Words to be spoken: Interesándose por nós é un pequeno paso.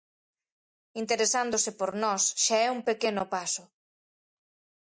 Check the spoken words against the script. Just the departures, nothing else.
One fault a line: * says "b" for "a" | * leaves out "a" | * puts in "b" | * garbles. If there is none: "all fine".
* puts in "xa"